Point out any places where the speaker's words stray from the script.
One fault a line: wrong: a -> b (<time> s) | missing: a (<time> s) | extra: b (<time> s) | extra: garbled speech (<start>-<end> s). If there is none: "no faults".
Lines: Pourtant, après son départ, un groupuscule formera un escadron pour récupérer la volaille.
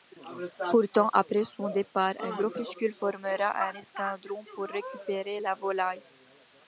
no faults